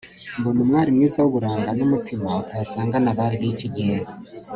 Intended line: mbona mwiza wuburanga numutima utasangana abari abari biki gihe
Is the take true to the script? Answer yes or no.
no